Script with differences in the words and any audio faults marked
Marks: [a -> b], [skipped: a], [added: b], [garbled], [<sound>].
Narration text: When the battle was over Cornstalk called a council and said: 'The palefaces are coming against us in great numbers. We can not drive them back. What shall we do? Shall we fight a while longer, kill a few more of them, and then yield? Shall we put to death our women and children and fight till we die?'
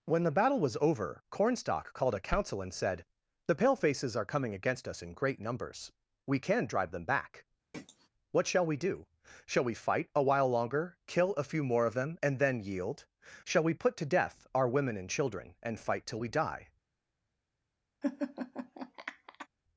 When the battle was over Cornstalk called a council and said: 'The palefaces are coming against us in great numbers. We can [skipped: not] drive them back. [throat clearing] What shall we do? Shall we fight a while longer, kill a few more of them, and then yield? Shall we put to death our women and children and fight till we die?' [laugh]